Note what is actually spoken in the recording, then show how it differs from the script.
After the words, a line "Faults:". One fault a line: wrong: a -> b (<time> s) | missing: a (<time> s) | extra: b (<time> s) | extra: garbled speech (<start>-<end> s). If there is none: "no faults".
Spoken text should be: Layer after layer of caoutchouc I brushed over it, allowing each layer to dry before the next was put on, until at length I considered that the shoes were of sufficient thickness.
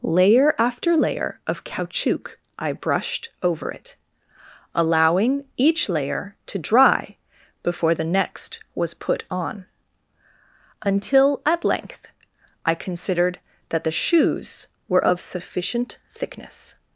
Layer after layer of caoutchouc I brushed over it, allowing each layer to dry before the next was put on, until at length I considered that the shoes were of sufficient thickness.
Faults:
no faults